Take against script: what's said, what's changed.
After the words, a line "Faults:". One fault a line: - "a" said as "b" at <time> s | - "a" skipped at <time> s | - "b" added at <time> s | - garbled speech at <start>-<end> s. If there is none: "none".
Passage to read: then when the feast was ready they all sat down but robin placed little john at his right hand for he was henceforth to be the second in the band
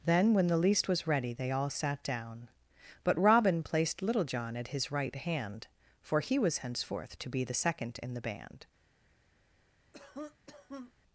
then when the least was ready they all sat down but robin placed little john at his right hand for he was henceforth to be the second in the band
Faults:
- "feast" said as "least" at 0.6 s